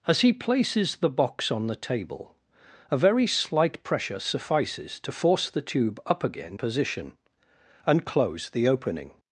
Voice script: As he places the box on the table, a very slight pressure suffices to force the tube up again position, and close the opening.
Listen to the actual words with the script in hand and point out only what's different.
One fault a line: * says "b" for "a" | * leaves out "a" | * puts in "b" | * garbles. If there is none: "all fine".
all fine